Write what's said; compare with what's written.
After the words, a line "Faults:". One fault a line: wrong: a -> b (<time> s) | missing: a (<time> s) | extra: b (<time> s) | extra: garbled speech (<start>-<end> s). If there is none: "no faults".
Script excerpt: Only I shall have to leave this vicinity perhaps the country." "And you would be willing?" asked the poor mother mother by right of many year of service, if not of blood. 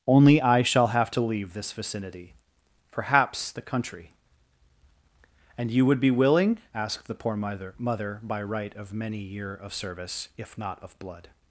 Only I shall have to leave this vicinity perhaps the country." "And you would be willing?" asked the poor mother mother by right of many year of service, if not of blood.
Faults:
no faults